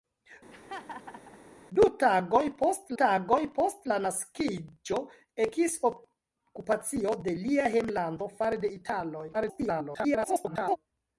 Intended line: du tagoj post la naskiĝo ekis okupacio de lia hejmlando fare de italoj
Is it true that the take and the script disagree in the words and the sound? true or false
true